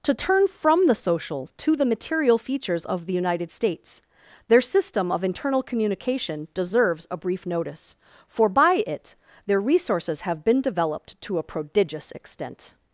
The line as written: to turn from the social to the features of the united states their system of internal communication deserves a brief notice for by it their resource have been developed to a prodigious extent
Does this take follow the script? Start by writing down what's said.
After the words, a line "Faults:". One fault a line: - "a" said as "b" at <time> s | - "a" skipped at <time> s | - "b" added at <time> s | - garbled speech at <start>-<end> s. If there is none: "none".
to turn from the social to the material features of the united states their system of internal communication deserves a brief notice for by it their resources have been developed to a prodigious extent
Faults:
- "material" added at 1.9 s
- "resource" said as "resources" at 9.6 s